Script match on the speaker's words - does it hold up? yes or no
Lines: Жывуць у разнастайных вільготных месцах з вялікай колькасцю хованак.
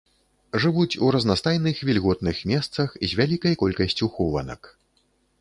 yes